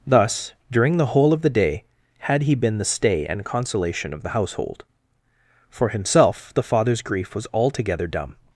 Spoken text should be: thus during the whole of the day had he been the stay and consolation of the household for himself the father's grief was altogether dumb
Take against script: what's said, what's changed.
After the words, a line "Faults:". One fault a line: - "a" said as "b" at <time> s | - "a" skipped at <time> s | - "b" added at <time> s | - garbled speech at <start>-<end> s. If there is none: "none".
thus during the whole of the day had he been the stay and consolation of the household for himself the father's grief was altogether dumb
Faults:
none